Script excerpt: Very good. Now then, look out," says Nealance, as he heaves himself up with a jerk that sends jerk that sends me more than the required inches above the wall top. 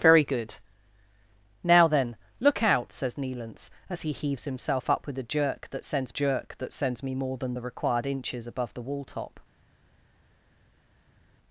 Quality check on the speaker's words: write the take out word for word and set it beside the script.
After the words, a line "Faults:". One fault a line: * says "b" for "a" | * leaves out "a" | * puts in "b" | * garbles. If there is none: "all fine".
Very good. Now then, look out," says Nealance, as he heaves himself up with a jerk that sends jerk that sends me more than the required inches above the wall top.
Faults:
all fine